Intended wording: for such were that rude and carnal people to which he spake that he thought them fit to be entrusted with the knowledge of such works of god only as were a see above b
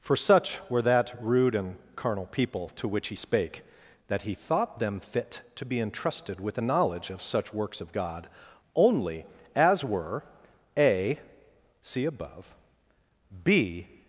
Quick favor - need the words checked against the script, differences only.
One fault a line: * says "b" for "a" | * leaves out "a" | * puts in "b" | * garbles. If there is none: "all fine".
all fine